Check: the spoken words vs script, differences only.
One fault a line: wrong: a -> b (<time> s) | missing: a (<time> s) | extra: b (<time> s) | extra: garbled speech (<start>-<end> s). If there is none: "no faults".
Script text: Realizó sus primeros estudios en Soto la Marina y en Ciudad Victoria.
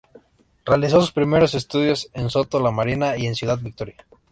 no faults